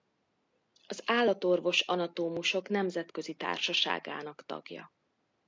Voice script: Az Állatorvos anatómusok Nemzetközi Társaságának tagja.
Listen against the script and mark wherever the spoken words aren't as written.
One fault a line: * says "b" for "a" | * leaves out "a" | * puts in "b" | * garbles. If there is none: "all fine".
all fine